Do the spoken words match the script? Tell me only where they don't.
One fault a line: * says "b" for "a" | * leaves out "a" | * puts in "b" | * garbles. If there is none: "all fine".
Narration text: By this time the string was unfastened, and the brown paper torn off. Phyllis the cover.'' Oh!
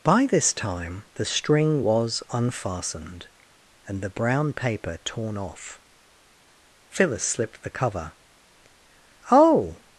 * puts in "slipped"